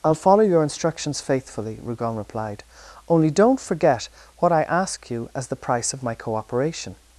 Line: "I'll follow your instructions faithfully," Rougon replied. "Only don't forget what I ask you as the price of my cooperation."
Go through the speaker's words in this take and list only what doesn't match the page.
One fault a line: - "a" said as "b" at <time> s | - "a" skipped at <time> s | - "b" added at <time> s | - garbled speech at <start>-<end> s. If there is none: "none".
none